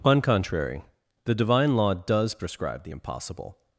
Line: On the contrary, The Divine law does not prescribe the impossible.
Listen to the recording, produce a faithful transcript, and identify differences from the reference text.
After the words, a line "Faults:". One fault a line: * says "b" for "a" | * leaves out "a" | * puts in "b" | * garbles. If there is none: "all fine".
On contrary, The Divine law does prescribe the impossible.
Faults:
* leaves out "the"
* leaves out "not"